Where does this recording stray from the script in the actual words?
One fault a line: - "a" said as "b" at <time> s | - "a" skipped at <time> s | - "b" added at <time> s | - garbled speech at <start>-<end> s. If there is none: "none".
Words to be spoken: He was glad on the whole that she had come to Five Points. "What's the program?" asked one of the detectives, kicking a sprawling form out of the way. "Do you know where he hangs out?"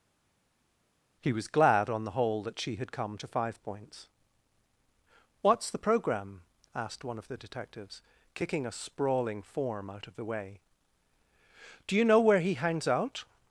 none